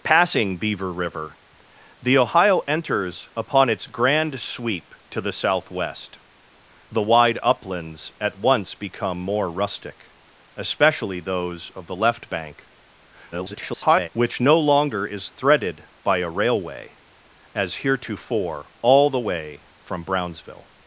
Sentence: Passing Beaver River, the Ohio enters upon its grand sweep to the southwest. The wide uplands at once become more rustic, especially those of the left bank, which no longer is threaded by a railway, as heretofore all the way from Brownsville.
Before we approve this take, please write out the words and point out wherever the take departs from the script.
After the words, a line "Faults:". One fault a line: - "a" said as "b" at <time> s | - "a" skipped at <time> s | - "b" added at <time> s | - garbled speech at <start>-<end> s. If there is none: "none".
Passing Beaver River, the Ohio enters upon its grand sweep to the southwest. The wide uplands at once become more rustic, especially those of the left bank, [garbled] which no longer is threaded by a railway, as heretofore all the way from Brownsville.
Faults:
- garbled speech at 13.3-14.1 s